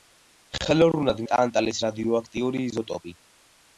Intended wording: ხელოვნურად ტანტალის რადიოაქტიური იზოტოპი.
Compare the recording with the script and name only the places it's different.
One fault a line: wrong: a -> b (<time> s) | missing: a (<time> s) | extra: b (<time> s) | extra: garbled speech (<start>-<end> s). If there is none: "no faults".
no faults